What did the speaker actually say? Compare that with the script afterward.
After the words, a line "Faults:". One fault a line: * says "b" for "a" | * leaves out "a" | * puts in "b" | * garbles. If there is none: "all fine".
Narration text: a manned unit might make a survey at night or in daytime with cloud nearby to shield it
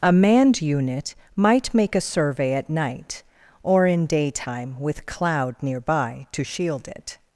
a manned unit might make a survey at night or in daytime with cloud nearby to shield it
Faults:
all fine